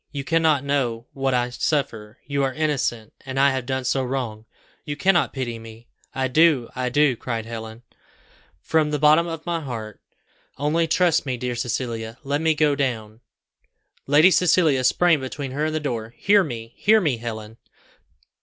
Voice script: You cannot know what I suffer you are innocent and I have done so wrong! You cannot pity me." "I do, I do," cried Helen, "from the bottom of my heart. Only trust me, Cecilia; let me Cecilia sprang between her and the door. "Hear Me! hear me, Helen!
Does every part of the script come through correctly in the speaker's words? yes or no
no